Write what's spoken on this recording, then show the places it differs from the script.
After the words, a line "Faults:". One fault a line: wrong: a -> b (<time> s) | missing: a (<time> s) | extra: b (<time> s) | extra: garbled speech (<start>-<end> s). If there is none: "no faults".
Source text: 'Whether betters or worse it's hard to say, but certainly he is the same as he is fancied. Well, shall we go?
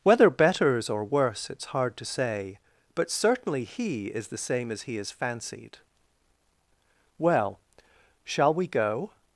'Whether betters or worse it's hard to say, but certainly he is the same as he is fancied. Well, shall we go?
Faults:
no faults